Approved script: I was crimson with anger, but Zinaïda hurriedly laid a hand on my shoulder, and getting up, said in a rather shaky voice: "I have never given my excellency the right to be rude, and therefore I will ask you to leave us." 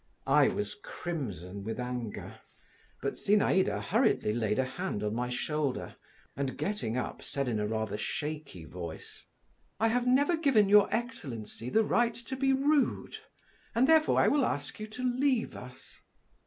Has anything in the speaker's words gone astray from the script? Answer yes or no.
yes